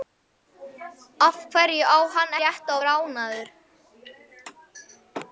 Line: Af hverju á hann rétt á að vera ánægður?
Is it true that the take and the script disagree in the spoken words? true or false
false